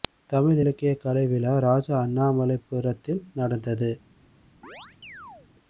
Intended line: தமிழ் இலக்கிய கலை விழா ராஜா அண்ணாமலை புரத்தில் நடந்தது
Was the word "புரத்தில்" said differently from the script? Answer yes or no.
no